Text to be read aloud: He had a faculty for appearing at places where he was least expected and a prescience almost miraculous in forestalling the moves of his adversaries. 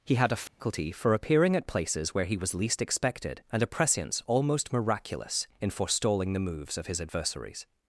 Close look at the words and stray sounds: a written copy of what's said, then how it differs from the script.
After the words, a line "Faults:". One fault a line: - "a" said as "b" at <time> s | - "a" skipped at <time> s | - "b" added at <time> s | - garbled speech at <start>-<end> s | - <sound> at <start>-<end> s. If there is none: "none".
He had a faculty for appearing at places where he was least expected and a prescience almost miraculous in forestalling the moves of his adversaries.
Faults:
- dropout at 0.5-0.6 s